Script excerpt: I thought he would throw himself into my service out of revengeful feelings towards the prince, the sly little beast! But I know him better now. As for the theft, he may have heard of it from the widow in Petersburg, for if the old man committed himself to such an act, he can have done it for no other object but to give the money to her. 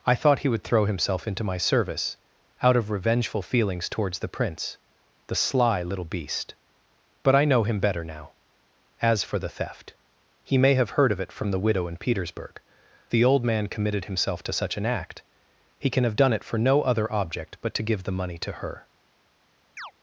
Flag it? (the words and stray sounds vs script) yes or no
yes